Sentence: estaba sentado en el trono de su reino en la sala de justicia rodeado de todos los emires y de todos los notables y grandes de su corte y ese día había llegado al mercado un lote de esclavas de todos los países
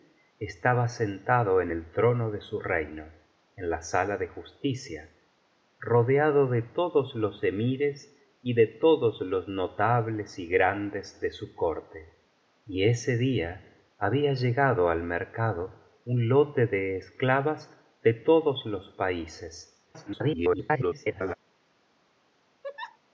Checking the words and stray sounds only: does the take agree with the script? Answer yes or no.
no